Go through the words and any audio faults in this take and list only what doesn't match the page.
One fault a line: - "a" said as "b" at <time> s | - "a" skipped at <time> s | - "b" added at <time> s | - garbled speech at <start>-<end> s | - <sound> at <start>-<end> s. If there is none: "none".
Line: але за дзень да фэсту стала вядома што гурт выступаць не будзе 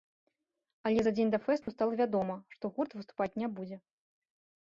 - dropout at 1.6-1.7 s